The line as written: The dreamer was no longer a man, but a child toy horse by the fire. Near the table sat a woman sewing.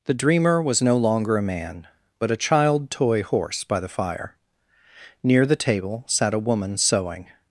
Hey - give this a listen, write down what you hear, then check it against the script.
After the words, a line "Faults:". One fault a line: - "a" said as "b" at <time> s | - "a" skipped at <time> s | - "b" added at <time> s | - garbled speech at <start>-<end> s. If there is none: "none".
The dreamer was no longer a man, but a child toy horse by the fire. Near the table sat a woman sewing.
Faults:
none